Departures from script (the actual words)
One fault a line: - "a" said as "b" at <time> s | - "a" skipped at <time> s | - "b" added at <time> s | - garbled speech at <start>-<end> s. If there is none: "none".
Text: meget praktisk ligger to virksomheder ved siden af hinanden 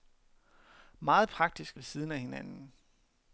- "ligger to virksomheder" skipped at 1.8 s